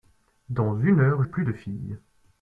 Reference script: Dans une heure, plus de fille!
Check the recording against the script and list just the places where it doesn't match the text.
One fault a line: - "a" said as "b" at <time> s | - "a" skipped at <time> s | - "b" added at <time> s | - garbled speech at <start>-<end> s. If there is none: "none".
none